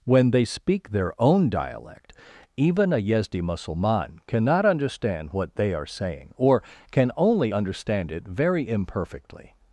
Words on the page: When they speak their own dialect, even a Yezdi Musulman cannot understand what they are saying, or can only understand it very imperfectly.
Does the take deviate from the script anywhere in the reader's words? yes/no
no